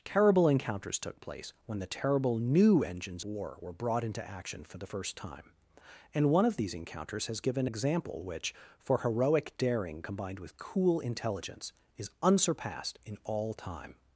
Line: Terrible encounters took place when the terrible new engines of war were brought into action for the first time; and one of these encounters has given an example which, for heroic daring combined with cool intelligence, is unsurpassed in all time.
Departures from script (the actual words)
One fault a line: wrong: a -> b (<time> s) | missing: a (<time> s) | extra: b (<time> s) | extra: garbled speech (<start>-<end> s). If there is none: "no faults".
missing: of (3.2 s)
missing: an (7.7 s)